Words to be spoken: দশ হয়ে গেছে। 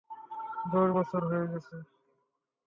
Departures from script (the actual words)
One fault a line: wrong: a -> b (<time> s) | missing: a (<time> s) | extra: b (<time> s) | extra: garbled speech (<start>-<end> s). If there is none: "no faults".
extra: বছর (1.0 s)